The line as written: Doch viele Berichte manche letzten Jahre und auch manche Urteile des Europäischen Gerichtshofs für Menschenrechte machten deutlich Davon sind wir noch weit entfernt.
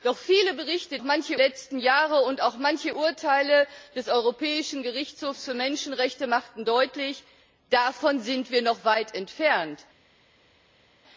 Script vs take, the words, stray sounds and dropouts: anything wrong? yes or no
no